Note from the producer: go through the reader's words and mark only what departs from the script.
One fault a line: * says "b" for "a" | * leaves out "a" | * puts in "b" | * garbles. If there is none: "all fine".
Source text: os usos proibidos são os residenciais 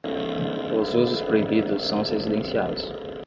all fine